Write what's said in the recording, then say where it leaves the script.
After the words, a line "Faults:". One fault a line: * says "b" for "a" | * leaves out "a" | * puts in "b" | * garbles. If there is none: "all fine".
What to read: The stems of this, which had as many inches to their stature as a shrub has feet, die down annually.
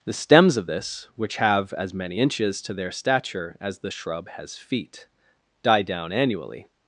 The stems of this, which have as many inches to their stature as the shrub has feet, die down annually.
Faults:
* says "have" for "had"
* says "the" for "a"